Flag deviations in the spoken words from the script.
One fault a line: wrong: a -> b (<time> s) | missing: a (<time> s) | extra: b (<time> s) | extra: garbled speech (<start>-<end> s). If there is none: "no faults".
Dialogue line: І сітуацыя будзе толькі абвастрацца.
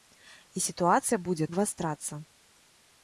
missing: толькі (1.5 s)